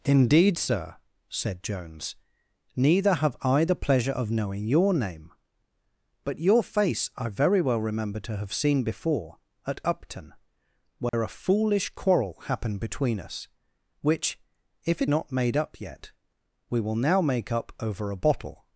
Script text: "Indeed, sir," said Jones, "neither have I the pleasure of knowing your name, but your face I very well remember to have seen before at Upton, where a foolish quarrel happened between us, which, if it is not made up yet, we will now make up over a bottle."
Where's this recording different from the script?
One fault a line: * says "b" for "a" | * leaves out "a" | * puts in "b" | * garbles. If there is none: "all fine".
* leaves out "is"